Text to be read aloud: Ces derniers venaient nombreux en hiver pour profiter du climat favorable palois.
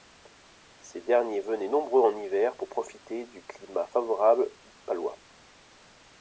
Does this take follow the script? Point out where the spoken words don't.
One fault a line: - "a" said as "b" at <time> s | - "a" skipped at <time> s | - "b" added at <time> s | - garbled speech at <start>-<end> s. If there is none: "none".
none